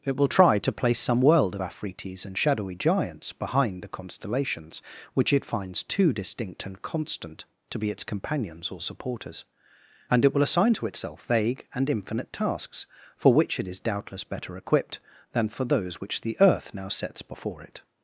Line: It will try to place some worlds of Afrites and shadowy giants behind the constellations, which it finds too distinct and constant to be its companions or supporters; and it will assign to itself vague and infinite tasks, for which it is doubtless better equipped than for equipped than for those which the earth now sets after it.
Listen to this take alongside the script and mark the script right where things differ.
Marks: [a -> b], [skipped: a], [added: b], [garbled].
It will try to place some [worlds -> world] of Afrites and shadowy giants behind the constellations, which it finds too distinct and constant to be its companions or supporters; and it will assign to itself vague and infinite tasks, for which it is doubtless better equipped than for [skipped: equipped than for] those which the earth now sets [after -> before] it.